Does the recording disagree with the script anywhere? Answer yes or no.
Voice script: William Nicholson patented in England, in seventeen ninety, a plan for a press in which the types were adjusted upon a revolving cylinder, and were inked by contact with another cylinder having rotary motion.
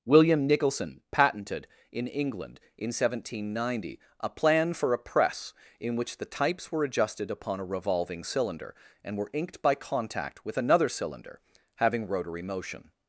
no